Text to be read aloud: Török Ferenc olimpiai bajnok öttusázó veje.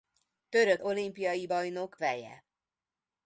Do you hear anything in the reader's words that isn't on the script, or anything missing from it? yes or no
yes